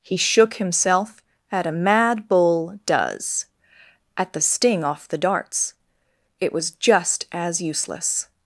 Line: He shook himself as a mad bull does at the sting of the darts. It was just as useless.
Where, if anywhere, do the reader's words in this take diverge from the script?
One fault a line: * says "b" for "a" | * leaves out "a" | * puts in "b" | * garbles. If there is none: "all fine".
* says "at" for "as"
* says "off" for "of"